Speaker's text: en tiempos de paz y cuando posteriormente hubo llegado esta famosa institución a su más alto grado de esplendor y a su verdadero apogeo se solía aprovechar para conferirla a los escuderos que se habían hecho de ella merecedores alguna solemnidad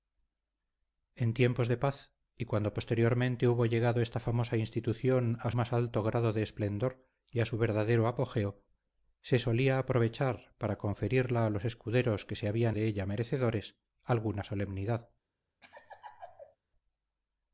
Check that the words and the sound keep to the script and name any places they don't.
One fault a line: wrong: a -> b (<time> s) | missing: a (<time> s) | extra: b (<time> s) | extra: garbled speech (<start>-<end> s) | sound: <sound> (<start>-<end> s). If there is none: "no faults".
missing: su (5.5 s)
missing: hecho (12.8 s)
sound: laugh (15.6-16.6 s)